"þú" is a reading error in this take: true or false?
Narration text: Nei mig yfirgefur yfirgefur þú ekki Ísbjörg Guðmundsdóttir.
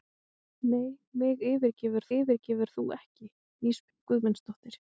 false